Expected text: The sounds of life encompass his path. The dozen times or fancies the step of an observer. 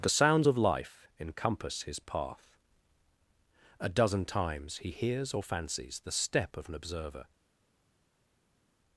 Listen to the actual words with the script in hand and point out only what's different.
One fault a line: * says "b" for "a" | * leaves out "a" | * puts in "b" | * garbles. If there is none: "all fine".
* says "A" for "The"
* puts in "he hears"